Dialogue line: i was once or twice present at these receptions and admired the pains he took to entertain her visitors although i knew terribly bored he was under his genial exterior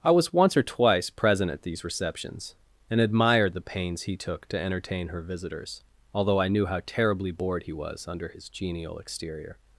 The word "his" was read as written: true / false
true